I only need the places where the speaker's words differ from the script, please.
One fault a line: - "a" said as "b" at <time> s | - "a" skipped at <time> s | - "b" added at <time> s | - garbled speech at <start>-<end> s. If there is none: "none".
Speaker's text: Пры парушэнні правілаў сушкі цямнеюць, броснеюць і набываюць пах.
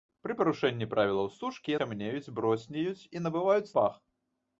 none